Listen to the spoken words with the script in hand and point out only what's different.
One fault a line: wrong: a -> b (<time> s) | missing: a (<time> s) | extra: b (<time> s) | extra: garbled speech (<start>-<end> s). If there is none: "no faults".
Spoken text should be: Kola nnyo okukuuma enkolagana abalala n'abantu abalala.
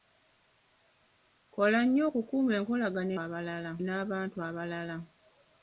no faults